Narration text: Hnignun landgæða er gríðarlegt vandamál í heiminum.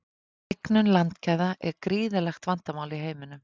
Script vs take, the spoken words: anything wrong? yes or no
no